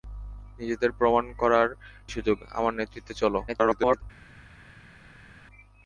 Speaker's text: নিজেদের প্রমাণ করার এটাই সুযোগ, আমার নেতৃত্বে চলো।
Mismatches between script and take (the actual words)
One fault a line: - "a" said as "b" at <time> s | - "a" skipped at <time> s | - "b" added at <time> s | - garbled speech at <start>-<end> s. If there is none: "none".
- "এটাই" skipped at 1.7 s
- garbled speech at 3.5-4.0 s